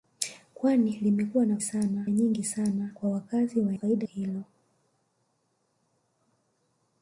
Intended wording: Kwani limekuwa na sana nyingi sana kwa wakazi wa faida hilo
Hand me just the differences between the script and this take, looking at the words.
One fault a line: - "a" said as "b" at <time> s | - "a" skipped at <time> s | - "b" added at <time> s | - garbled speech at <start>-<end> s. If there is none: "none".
none